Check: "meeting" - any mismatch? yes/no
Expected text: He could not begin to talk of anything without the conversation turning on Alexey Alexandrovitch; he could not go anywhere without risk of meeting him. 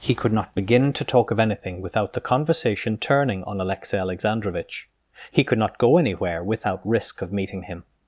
no